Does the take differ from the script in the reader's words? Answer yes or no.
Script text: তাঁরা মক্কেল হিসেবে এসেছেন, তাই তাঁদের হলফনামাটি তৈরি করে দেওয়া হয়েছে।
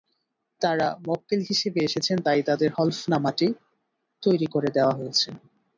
no